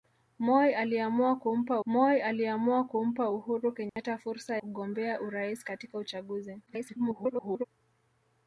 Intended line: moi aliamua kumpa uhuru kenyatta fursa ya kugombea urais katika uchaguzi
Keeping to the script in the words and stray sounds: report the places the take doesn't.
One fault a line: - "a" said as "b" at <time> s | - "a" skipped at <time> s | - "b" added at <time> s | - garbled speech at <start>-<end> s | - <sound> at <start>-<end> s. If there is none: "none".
- "moi aliamua kumpa" added at 1.9 s
- dropout at 3.9-4.0 s
- "ya" skipped at 4.6 s
- garbled speech at 6.7-7.6 s